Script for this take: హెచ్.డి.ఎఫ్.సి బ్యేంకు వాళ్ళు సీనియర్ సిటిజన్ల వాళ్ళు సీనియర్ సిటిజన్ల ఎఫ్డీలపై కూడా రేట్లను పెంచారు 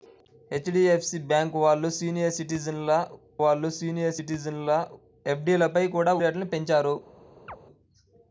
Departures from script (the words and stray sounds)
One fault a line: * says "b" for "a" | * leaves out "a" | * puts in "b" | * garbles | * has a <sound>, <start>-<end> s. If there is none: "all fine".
* has a chirp, 7.5-7.6 s